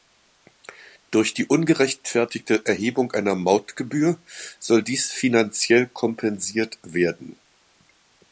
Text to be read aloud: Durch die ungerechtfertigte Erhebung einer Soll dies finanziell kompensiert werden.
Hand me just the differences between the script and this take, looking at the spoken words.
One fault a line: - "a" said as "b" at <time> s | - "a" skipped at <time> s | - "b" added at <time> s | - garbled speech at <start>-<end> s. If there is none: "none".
- "Mautgebühr" added at 3.4 s